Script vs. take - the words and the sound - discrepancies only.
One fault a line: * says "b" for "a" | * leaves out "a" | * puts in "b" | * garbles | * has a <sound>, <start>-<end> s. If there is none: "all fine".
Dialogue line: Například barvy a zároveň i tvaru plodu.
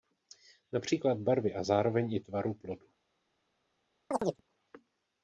* has a chirp, 4.1-4.4 s